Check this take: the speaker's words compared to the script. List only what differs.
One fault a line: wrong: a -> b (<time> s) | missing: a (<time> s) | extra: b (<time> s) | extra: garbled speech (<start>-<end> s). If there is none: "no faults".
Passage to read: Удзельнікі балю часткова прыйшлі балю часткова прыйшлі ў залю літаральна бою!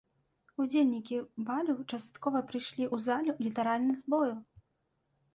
missing: балю часткова прыйшлі (2.9 s)
extra: з (4.0 s)